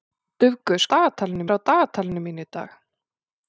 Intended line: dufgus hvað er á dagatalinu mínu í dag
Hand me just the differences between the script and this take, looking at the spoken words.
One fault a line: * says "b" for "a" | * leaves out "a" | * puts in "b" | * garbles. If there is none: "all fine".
* says "dagatalinu" for "hvað"